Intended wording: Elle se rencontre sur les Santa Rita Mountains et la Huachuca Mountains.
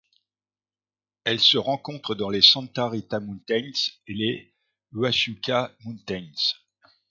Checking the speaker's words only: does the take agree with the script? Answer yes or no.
no